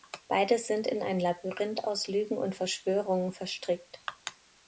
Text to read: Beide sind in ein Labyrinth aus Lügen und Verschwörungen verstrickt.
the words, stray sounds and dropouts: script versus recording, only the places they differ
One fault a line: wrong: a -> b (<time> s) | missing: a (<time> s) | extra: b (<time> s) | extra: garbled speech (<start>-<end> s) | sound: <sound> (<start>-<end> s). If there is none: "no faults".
no faults